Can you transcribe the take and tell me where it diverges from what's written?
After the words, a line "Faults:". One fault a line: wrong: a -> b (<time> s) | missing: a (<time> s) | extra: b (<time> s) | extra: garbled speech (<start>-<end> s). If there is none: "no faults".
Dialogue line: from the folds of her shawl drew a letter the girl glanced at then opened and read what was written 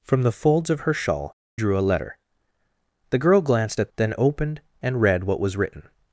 from the folds of her shawl drew a letter the girl glanced at then opened and read what was written
Faults:
no faults